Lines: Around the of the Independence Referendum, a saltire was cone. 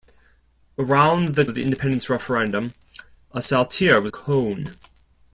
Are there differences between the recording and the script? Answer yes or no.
no